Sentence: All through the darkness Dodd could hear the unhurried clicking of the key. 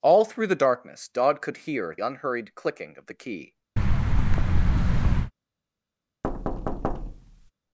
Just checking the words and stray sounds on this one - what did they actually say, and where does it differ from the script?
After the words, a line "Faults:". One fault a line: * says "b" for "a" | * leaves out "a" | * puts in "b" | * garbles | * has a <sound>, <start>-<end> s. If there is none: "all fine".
All through the darkness Dodd could hear unhurried clicking of the key.
Faults:
* leaves out "the"
* has a thud, 3.8-5.3 s
* has a thud, 6.2-7.5 s